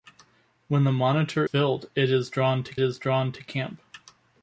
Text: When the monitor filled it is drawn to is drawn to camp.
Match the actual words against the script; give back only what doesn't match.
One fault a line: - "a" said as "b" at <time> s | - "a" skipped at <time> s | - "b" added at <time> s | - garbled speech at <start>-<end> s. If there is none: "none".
none